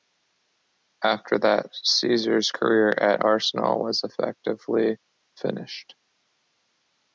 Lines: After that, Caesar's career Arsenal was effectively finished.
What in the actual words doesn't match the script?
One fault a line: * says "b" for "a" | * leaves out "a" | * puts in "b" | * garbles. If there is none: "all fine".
* puts in "at"